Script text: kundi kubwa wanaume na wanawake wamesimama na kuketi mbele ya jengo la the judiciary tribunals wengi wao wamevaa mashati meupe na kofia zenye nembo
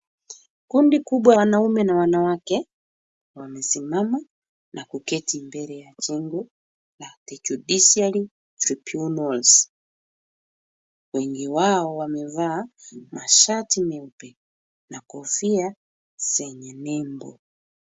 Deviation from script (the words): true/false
false